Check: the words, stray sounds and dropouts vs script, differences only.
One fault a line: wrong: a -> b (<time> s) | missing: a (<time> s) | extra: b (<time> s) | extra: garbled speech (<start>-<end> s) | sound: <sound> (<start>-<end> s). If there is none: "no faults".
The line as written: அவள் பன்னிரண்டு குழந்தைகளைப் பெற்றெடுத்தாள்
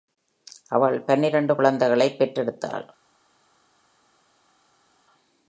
no faults